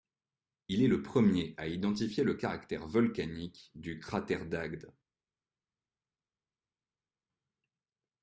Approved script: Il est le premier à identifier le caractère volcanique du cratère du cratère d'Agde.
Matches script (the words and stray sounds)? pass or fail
fail